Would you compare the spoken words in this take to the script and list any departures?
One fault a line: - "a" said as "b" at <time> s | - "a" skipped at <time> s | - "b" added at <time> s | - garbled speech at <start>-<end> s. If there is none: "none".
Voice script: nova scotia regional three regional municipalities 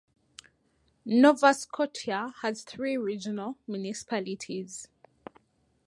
- "regional" said as "has" at 2.4 s